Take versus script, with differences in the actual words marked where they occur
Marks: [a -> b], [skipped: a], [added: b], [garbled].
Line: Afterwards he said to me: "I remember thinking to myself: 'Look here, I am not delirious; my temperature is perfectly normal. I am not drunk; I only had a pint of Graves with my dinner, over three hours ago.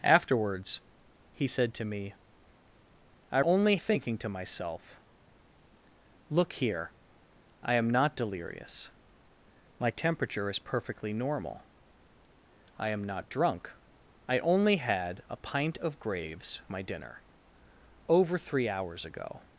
Afterwards he said to me: "I [remember -> only] thinking to myself: 'Look here, I am not delirious; my temperature is perfectly normal. I am not drunk; I only had a pint of Graves [skipped: with] my dinner, over three hours ago.